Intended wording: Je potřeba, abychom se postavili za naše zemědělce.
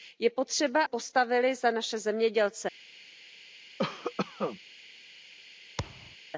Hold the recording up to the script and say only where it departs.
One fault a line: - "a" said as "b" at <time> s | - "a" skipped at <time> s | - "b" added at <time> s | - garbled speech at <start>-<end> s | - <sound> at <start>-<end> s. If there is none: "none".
- "abychom se" skipped at 0.8 s
- cough at 3.8-4.6 s
- thud at 5.8-6.2 s